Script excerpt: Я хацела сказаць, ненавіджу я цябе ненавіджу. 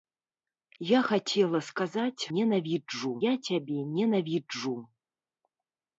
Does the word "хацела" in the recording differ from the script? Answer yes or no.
no